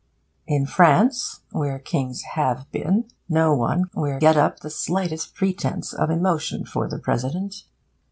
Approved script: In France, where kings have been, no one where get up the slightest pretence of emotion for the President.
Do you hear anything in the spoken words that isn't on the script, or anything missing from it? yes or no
no